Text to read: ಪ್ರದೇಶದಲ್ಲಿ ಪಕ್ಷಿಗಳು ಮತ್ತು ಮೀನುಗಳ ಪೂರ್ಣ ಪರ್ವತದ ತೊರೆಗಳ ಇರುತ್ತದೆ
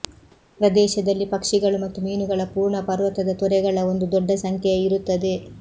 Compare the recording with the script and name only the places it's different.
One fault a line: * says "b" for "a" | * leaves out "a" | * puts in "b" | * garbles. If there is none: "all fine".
* puts in "ಒಂದು ದೊಡ್ಡ ಸಂಖ್ಯೆಯ"